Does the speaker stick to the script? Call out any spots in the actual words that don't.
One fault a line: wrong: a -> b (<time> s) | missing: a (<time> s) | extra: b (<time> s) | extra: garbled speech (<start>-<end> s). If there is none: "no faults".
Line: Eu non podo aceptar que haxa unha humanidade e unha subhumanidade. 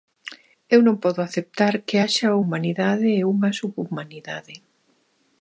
missing: unha (2.4 s)